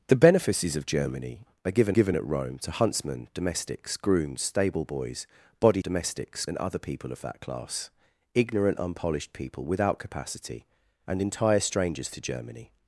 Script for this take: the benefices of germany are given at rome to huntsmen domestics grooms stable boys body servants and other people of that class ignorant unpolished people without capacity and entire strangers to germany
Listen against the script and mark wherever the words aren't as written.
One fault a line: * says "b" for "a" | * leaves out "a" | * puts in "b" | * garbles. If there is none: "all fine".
* puts in "given"
* says "domestics" for "servants"